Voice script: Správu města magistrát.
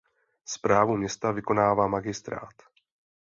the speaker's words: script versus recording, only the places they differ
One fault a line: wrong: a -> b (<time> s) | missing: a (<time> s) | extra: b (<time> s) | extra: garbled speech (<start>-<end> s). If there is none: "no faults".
extra: vykonává (1.3 s)